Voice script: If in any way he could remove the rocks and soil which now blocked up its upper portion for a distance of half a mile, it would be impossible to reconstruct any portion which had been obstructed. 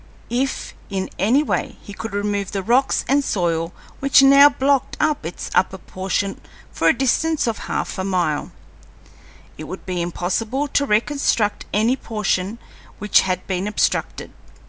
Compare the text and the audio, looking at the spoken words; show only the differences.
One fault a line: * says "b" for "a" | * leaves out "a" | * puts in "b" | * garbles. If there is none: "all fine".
all fine